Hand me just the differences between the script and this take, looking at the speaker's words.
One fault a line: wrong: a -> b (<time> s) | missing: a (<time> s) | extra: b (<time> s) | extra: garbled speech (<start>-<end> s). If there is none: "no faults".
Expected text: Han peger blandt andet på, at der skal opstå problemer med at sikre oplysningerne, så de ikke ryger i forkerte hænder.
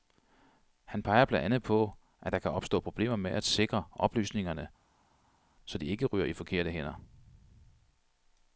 wrong: skal -> kan (2.4 s)